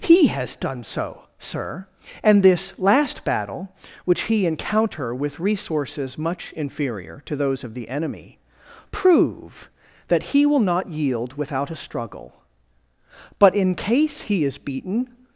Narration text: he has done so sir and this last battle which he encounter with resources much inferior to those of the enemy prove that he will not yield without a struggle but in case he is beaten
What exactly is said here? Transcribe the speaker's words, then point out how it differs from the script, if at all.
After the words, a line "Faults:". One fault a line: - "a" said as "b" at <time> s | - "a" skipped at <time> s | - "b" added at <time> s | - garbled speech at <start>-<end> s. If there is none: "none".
he has done so sir and this last battle which he encounter with resources much inferior to those of the enemy prove that he will not yield without a struggle but in case he is beaten
Faults:
none